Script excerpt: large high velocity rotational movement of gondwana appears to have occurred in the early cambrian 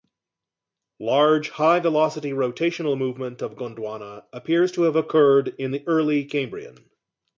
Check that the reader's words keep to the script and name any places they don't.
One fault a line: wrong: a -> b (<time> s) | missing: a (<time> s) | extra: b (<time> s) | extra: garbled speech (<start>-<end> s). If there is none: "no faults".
no faults